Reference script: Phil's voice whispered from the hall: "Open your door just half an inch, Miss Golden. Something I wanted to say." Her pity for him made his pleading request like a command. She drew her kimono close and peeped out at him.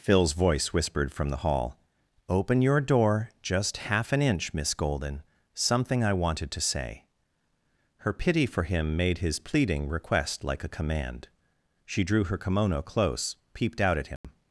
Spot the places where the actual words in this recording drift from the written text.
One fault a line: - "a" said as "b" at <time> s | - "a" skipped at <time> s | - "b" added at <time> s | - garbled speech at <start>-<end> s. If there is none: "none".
- "and" skipped at 13.3 s